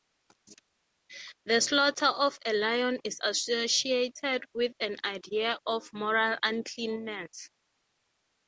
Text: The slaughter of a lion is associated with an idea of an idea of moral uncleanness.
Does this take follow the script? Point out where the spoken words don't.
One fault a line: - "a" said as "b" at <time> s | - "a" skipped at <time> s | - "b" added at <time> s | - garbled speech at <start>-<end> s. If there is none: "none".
- "an idea of" skipped at 5.9 s